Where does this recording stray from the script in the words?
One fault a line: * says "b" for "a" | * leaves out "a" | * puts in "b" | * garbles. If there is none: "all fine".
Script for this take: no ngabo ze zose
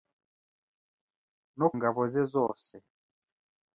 all fine